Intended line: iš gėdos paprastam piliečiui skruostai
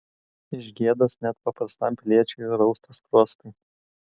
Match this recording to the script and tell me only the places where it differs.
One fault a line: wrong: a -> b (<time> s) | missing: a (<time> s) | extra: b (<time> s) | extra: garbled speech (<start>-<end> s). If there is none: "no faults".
extra: net (1.2 s)
extra: rausta (2.6 s)